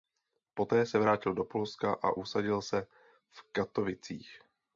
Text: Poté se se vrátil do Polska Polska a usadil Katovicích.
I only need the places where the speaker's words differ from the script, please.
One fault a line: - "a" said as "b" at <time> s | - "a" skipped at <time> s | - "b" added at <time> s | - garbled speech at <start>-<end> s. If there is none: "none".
- "se" skipped at 1.0 s
- "Polska" skipped at 1.9 s
- "se v" added at 2.6 s